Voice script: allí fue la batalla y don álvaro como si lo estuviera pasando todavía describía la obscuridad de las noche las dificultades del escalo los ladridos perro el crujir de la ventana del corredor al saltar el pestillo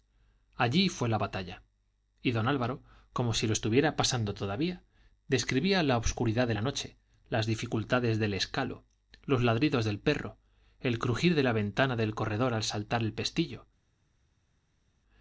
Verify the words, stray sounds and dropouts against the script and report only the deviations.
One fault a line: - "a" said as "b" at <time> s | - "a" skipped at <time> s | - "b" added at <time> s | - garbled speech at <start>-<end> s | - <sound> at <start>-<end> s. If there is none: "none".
- "las" said as "la" at 6.5 s
- "del" added at 9.9 s